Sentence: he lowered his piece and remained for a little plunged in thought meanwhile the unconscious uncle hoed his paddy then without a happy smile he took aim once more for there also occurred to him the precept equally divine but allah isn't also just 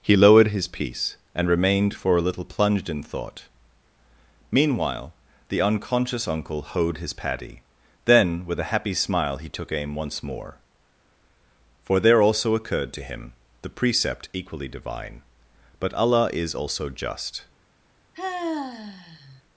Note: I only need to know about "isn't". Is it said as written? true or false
false